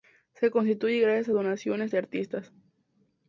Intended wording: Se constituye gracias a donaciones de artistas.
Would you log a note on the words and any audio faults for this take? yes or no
no